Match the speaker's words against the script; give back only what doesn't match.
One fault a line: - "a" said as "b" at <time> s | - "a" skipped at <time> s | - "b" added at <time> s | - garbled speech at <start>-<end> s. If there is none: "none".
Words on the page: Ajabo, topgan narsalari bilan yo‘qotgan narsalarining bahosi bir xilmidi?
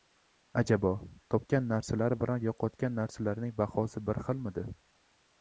none